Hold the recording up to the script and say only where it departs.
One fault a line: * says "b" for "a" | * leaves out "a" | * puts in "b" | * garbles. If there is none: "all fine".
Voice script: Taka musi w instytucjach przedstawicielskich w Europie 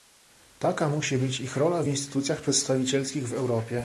* puts in "być ich rola"